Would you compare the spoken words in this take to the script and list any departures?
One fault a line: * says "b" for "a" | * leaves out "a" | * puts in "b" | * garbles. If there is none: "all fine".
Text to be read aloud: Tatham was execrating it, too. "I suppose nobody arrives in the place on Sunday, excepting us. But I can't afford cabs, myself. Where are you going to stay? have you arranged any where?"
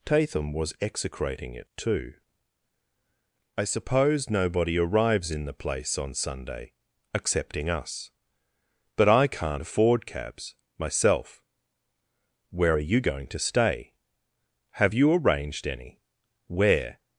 all fine